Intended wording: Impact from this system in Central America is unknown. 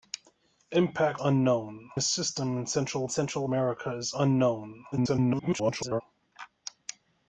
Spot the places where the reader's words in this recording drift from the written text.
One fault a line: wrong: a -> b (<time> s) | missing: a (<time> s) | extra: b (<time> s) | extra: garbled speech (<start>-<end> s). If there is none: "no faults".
wrong: from -> unknown (1.2 s)
extra: Central (3.1 s)
extra: garbled speech (4.9-6.0 s)